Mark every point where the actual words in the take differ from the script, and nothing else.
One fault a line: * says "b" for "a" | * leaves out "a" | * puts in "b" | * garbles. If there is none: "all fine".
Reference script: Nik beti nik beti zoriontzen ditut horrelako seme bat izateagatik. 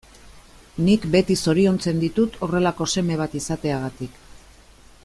* leaves out "nik beti"